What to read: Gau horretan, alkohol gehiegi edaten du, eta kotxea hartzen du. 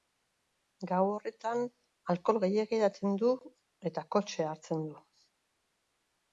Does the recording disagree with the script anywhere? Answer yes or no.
no